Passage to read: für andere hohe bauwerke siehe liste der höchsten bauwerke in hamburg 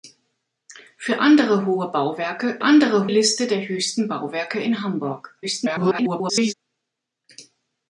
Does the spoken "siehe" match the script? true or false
false